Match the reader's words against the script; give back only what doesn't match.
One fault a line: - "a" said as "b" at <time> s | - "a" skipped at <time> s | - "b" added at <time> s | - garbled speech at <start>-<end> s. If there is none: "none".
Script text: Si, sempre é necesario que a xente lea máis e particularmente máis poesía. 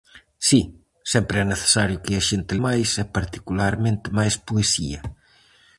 - "lea" skipped at 2.5 s